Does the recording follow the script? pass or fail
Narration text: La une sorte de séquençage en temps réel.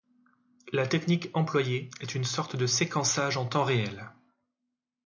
fail